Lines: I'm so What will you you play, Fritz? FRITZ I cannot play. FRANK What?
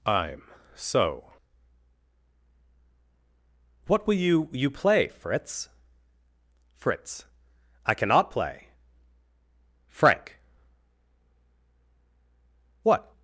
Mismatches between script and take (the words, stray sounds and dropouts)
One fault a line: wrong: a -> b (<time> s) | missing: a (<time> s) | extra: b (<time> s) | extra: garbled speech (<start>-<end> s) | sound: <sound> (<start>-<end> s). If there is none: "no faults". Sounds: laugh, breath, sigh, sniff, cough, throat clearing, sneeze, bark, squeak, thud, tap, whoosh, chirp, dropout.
no faults